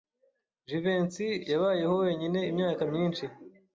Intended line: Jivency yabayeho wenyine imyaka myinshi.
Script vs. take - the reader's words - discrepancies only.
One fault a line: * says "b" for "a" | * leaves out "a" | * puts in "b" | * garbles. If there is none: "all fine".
all fine